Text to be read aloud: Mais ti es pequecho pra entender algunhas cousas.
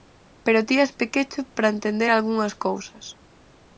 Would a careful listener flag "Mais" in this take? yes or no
yes